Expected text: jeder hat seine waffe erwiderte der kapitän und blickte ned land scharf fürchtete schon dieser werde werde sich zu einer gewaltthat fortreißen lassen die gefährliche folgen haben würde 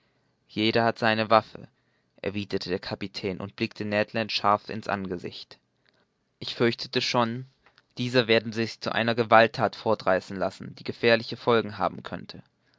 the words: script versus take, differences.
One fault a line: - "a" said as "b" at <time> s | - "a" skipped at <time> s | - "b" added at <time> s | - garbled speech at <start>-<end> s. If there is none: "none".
- "in's angesicht ich" added at 4.7 s
- "werde" skipped at 8.5 s
- "würde" said as "könnte" at 12.0 s